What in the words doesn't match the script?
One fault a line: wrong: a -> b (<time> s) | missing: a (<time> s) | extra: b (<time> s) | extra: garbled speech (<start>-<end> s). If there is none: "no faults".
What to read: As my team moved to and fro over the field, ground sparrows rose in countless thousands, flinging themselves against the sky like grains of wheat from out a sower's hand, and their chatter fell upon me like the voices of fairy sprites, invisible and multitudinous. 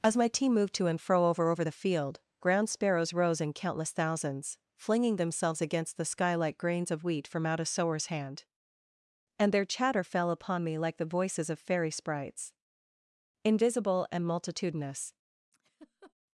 extra: over (1.5 s)